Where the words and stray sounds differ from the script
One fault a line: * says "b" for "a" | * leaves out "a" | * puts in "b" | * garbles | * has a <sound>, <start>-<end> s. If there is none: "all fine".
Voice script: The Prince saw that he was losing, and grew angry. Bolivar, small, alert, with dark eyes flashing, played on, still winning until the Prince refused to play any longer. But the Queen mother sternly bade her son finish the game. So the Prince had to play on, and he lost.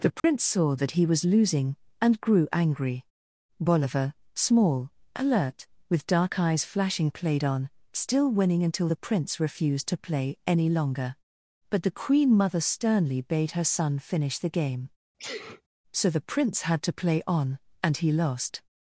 * has a dropout, 0.2-0.2 s
* has a sneeze, 15.2-15.6 s